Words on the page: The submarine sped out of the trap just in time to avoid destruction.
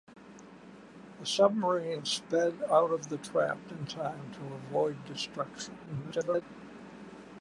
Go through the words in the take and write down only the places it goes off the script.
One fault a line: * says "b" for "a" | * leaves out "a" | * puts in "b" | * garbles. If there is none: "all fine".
* leaves out "just"
* garbles